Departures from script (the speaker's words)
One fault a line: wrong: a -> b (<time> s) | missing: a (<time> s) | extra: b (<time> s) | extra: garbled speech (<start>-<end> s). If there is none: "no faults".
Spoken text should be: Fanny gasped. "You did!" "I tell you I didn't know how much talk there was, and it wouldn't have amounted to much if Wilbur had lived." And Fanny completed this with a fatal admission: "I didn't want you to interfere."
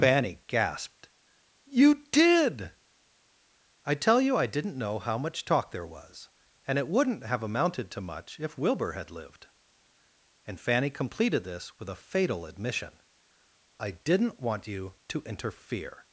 no faults